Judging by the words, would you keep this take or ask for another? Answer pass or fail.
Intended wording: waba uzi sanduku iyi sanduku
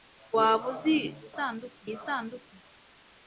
pass